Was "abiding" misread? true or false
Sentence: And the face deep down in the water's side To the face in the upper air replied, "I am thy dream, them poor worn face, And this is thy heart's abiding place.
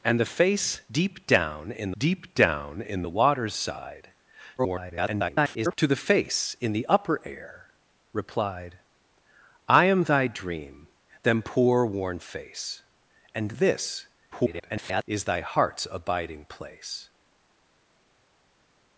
false